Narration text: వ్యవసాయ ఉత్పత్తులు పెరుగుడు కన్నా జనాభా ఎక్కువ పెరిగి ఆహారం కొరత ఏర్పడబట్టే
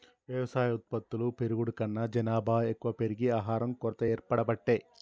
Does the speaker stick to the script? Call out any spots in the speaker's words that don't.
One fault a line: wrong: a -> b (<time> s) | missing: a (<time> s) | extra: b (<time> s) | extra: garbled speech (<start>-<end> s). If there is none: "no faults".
no faults